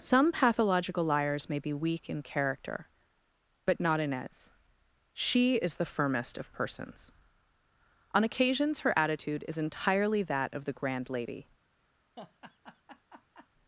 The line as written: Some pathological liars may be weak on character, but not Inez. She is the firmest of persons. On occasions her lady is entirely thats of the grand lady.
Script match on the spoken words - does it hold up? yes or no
no